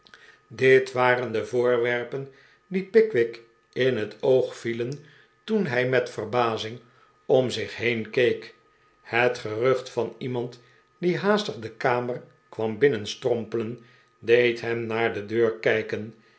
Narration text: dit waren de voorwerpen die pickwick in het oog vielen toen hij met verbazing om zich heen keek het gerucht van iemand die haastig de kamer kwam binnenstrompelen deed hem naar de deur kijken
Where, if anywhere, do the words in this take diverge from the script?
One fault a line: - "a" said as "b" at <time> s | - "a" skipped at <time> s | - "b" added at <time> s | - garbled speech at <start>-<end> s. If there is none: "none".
none